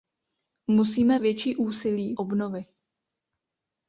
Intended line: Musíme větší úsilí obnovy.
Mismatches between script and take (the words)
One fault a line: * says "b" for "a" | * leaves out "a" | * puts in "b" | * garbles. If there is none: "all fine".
all fine